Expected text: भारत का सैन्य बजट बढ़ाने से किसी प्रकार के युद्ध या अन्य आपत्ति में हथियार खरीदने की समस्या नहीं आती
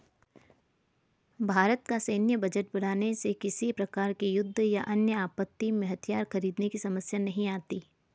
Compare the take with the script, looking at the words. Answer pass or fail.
pass